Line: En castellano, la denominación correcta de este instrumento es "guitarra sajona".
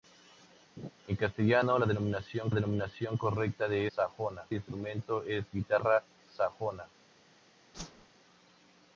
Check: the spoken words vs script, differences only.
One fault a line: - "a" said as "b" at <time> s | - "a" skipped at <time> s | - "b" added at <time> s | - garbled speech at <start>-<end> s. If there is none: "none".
- "denominación" added at 2.5 s
- "este" said as "sajona" at 4.0 s